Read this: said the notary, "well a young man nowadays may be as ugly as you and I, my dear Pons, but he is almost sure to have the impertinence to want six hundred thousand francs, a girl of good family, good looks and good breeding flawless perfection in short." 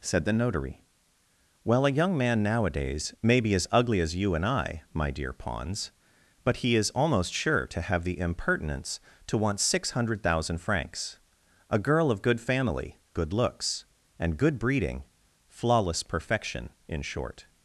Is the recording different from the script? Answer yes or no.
no